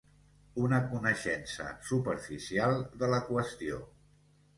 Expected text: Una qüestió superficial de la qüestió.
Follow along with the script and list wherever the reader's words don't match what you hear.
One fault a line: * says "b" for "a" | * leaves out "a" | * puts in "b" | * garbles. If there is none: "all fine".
* says "coneixença" for "qüestió"